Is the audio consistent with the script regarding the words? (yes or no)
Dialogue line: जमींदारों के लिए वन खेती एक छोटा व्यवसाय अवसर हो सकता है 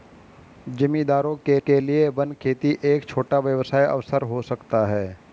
no